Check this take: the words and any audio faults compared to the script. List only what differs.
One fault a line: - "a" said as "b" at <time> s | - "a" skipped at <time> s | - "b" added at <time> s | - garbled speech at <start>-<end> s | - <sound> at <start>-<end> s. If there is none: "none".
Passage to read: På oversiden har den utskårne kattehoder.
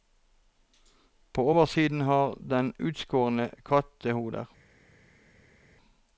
none